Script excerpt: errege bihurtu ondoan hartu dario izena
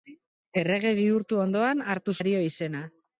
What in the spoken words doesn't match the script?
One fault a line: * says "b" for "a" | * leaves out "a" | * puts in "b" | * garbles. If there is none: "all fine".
all fine